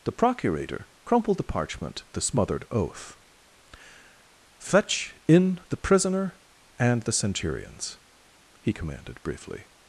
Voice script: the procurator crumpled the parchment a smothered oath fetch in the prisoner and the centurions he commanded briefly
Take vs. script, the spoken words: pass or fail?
pass